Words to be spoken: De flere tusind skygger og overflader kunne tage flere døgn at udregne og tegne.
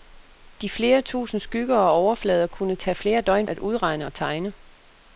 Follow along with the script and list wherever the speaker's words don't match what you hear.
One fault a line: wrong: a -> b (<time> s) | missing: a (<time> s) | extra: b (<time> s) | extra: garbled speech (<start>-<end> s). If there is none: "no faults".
no faults